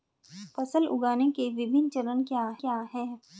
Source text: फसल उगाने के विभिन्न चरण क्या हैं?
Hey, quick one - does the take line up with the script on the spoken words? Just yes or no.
no